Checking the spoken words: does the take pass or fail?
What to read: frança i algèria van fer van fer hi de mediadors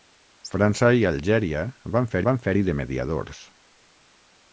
pass